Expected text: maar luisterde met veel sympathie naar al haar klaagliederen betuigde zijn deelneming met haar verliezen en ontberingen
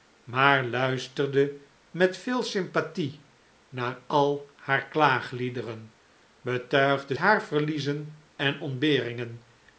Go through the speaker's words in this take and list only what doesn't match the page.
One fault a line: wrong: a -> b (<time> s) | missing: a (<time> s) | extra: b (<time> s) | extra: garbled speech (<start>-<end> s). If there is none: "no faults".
missing: zijn deelneming met (7.2 s)